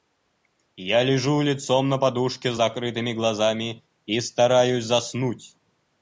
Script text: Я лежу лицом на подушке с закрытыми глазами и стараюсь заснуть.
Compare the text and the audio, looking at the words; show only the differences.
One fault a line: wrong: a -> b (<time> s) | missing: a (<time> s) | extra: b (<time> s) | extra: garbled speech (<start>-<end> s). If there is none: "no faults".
no faults